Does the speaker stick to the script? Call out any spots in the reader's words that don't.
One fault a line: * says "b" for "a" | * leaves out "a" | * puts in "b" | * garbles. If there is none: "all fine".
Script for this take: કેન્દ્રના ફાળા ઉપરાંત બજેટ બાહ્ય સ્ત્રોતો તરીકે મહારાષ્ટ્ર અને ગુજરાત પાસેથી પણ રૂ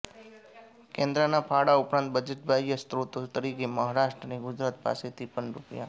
all fine